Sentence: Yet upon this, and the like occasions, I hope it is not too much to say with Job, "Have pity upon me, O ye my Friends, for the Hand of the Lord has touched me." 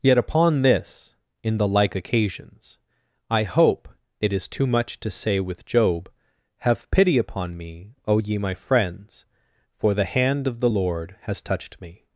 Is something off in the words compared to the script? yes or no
yes